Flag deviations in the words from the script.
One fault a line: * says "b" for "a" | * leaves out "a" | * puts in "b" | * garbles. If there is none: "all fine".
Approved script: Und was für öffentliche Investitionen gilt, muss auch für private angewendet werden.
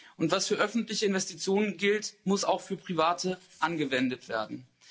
all fine